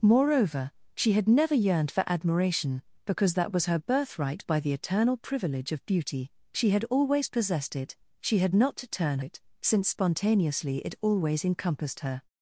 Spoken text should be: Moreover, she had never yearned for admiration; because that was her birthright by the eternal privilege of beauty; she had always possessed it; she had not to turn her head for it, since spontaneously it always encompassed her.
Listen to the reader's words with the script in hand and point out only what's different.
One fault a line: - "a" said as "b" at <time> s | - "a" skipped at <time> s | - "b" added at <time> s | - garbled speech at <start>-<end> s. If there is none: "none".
- "her head for" skipped at 9.2 s